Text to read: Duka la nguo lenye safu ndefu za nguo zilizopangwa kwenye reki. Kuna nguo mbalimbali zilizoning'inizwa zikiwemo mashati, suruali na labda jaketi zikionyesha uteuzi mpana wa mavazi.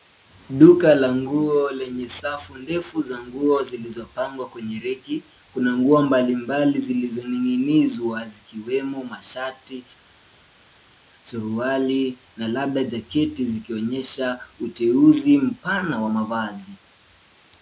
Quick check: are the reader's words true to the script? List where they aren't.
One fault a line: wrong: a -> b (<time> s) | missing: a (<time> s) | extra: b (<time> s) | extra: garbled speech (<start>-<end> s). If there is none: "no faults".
no faults